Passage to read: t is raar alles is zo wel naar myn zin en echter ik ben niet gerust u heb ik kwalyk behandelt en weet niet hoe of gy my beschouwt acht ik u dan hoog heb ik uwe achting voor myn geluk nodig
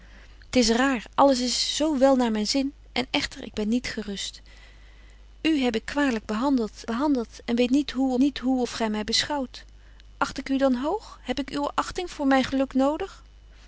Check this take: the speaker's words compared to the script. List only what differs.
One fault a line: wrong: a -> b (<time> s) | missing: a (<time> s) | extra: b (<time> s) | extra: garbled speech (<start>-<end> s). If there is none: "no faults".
extra: behandelt (6.8 s)
extra: niet hoe (8.2 s)